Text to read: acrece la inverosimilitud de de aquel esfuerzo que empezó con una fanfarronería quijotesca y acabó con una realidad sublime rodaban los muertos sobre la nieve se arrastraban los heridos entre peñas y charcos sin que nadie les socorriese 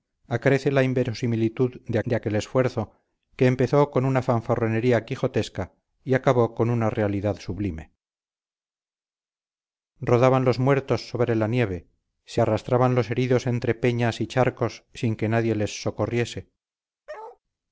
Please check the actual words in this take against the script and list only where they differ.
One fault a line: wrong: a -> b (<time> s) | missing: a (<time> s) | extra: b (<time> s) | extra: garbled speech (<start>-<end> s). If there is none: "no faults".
no faults